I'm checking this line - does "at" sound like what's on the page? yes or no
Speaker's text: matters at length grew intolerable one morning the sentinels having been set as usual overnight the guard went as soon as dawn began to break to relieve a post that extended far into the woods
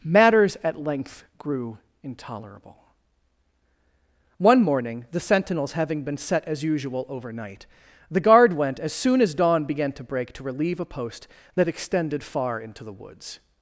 yes